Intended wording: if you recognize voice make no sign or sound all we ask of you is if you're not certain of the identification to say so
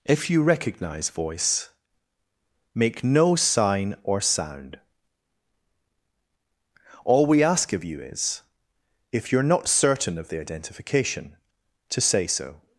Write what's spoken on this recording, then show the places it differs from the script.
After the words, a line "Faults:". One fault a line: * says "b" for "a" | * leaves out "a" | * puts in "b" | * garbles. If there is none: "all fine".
if you recognize voice make no sign or sound all we ask of you is if you're not certain of the identification to say so
Faults:
all fine